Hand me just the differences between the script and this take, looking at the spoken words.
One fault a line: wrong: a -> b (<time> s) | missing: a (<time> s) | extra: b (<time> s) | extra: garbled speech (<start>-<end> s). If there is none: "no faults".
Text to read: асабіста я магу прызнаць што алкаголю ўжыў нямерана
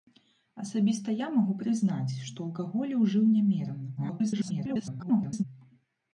extra: garbled speech (4.0-5.4 s)